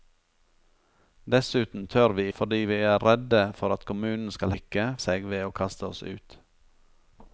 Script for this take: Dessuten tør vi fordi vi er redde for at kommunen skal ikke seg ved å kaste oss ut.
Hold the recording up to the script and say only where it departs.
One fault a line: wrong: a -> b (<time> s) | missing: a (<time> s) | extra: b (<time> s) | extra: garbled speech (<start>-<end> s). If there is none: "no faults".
no faults